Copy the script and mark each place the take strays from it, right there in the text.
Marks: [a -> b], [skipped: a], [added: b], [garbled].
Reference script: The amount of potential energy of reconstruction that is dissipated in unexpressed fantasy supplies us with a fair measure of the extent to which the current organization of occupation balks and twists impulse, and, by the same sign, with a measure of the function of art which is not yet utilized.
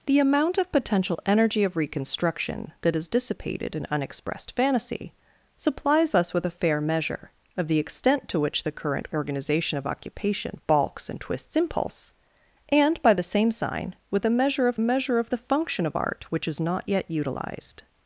The amount of potential energy of reconstruction that is dissipated in unexpressed fantasy supplies us with a fair measure of the extent to which the current organization of occupation balks and twists impulse, and, by the same sign, with a measure of [added: measure of] the function of art which is not yet utilized.